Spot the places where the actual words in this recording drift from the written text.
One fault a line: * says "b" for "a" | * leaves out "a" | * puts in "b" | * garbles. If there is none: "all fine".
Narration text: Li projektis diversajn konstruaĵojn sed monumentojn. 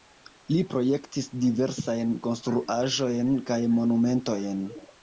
* says "kaj" for "sed"